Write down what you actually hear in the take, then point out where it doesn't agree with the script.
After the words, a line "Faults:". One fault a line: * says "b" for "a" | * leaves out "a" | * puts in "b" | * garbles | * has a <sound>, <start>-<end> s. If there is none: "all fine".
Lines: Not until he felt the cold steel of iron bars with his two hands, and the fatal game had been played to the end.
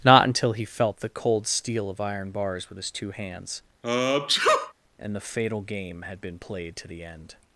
Not until he felt the cold steel of iron bars with his two hands, and the fatal game had been played to the end.
Faults:
* has a sneeze, 3.8-4.7 s